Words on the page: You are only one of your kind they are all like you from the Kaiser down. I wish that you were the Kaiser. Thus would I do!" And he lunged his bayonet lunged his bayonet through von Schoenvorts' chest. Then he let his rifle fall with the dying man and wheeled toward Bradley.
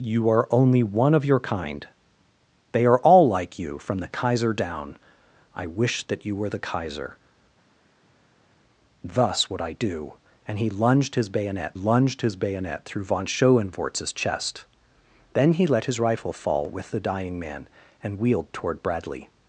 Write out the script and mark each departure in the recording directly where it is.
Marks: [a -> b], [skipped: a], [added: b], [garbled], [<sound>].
You are only one of your kind they are all like you from the Kaiser down. I wish that you were the Kaiser. Thus would I do!" And he lunged his bayonet lunged his bayonet through von Schoenvorts' chest. Then he let his rifle fall with the dying man and wheeled toward Bradley.